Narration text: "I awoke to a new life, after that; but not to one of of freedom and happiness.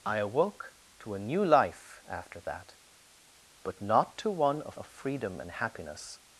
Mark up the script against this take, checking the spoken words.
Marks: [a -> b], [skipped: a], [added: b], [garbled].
"I awoke to a new life, after that; but not to one of of freedom and happiness.